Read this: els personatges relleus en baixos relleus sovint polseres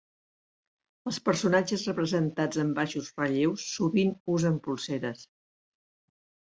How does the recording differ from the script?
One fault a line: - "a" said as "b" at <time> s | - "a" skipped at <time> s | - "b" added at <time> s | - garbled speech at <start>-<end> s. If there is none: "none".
- "relleus" said as "representats" at 1.9 s
- "usen" added at 4.4 s